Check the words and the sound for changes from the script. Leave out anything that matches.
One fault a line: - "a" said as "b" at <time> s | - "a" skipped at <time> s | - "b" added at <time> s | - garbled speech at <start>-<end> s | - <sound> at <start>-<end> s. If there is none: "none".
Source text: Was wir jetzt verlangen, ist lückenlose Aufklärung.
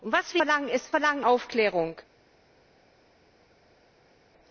- "jetzt" skipped at 0.4 s
- "lückenlose" said as "verlangen" at 0.9 s